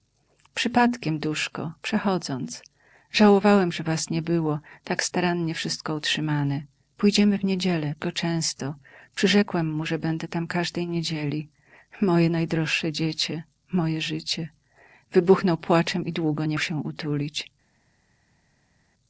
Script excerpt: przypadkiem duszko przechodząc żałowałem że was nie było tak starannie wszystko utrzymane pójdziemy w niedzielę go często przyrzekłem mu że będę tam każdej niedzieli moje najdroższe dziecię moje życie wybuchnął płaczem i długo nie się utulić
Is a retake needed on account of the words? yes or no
no